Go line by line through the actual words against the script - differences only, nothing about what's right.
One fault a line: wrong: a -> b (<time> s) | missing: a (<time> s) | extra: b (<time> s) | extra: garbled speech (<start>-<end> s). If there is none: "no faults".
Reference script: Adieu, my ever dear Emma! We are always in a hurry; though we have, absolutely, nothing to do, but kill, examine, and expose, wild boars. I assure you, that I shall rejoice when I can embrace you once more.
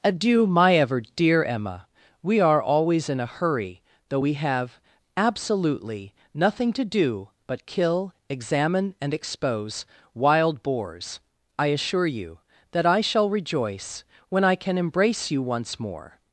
no faults